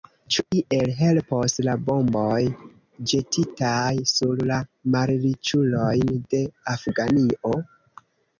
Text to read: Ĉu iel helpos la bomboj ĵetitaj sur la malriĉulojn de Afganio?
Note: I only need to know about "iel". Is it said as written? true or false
true